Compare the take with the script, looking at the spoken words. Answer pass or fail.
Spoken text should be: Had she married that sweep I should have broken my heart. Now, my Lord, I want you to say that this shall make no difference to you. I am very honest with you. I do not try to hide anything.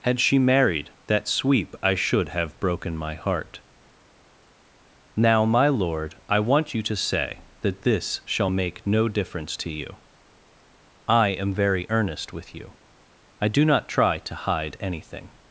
fail